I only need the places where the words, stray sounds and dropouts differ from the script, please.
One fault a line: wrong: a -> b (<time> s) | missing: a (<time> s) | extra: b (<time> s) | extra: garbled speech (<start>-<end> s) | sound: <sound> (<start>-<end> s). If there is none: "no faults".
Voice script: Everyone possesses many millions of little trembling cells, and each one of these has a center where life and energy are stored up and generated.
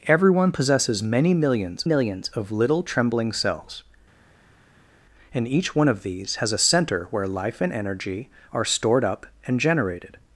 extra: millions (1.8 s)